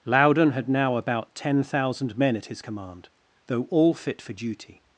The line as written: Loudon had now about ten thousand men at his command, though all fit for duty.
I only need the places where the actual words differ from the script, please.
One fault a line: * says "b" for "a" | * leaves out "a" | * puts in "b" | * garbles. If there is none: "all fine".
all fine